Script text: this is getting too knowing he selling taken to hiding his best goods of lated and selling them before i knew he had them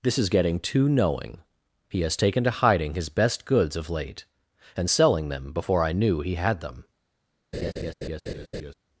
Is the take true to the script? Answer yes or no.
no